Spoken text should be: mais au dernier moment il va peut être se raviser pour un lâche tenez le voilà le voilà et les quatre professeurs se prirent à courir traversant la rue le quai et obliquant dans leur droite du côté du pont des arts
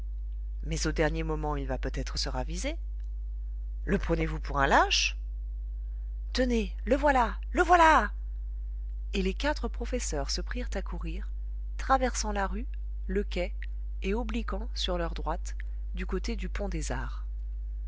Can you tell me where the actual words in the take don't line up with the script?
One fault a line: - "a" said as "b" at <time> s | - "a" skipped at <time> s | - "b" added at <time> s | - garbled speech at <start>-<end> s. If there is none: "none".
- "le prenez vous" added at 3.8 s
- "dans" said as "sur" at 14.7 s